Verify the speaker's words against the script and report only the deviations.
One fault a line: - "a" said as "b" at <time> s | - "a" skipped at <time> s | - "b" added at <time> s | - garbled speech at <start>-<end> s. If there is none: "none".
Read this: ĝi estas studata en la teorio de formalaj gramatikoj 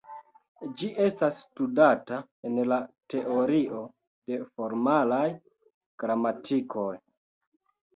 none